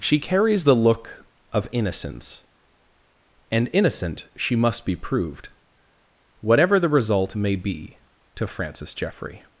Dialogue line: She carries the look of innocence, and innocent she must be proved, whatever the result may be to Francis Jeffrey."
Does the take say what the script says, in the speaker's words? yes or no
yes